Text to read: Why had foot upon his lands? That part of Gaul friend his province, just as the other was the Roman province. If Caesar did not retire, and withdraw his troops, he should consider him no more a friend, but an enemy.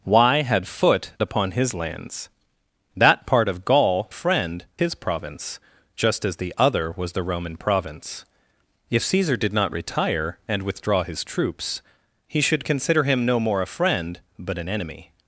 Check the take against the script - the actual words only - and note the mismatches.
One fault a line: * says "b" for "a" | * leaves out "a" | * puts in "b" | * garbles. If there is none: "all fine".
all fine